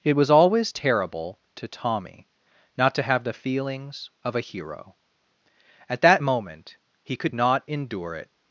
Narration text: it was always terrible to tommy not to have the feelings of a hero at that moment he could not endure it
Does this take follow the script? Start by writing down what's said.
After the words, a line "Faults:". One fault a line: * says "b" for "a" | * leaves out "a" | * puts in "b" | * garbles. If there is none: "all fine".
it was always terrible to tommy not to have the feelings of a hero at that moment he could not endure it
Faults:
all fine